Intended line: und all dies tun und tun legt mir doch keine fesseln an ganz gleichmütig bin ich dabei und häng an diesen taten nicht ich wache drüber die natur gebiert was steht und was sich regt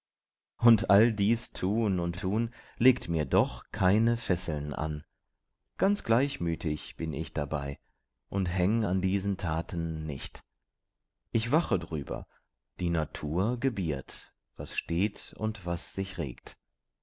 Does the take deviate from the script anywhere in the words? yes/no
no